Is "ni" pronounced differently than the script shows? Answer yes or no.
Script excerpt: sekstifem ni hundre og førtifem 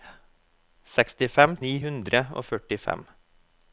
no